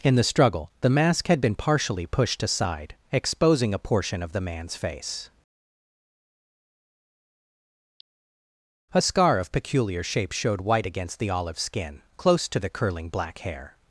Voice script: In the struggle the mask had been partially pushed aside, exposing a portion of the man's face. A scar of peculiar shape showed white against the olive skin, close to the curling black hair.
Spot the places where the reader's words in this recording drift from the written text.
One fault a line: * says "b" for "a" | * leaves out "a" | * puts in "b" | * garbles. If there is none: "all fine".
all fine